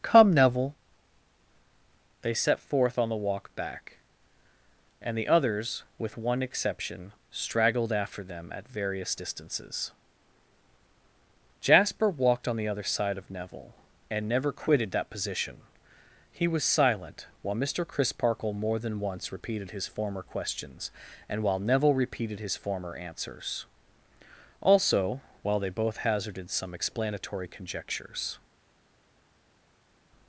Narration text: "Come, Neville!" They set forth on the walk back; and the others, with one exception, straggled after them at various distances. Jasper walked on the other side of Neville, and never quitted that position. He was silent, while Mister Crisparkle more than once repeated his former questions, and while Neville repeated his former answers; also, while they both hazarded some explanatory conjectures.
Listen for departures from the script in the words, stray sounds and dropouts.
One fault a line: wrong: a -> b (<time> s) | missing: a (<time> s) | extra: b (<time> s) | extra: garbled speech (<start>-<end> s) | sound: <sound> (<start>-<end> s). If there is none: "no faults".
no faults